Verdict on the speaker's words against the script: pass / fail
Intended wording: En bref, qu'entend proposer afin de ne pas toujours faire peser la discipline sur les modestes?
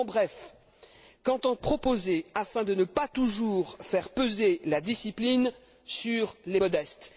pass